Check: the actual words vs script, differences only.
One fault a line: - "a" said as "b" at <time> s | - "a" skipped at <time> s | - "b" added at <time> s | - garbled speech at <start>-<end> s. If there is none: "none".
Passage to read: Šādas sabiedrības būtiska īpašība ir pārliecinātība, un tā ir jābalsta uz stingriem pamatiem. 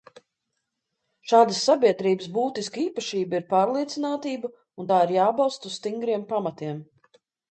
none